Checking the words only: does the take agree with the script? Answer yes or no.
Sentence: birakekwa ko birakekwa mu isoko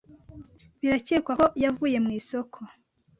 no